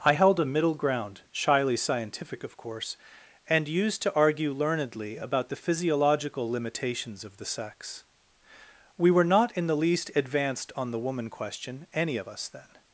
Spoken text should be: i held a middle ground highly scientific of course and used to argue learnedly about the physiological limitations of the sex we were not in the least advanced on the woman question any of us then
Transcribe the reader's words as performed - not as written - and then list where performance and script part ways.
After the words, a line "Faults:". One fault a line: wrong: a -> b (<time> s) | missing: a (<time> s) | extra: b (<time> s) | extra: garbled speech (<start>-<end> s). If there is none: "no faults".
i held a middle ground shyly scientific of course and used to argue learnedly about the physiological limitations of the sex we were not in the least advanced on the woman question any of us then
Faults:
wrong: highly -> shyly (1.3 s)